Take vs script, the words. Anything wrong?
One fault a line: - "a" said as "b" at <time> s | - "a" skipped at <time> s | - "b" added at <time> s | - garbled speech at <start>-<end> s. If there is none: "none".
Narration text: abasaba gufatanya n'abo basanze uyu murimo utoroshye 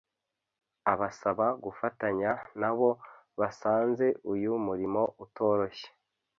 none